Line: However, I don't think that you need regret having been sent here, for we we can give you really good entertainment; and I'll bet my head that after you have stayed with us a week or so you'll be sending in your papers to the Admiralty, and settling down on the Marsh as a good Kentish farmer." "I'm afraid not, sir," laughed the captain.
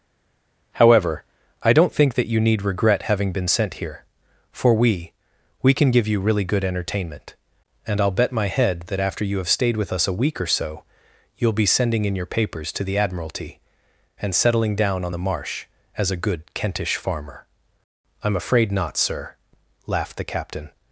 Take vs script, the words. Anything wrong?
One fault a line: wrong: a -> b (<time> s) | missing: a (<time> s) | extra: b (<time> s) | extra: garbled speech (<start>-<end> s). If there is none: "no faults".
no faults